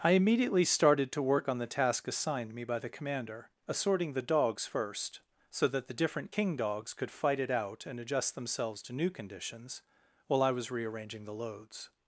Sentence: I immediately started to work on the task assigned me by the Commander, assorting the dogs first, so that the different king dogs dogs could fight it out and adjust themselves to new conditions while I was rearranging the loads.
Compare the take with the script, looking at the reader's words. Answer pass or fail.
fail